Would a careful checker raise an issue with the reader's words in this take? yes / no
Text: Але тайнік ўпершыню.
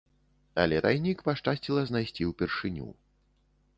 yes